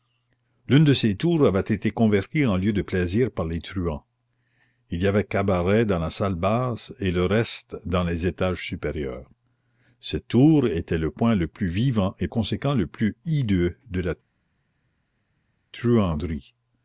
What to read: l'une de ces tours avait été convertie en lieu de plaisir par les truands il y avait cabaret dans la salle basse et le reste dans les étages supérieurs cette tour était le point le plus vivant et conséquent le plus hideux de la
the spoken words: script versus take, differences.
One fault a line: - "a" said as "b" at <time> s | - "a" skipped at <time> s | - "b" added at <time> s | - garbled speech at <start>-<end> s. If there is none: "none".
none